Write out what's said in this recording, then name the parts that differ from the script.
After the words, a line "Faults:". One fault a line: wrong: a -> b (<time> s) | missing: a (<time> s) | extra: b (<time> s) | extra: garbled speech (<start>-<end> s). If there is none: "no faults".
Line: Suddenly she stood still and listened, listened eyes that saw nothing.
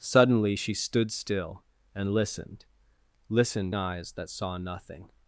Suddenly she stood still and listened, listened eyes that saw nothing.
Faults:
no faults